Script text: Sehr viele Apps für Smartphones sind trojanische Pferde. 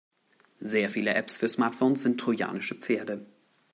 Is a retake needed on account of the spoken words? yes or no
no